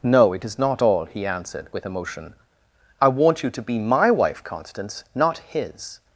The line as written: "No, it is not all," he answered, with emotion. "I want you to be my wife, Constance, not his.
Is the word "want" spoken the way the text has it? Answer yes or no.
yes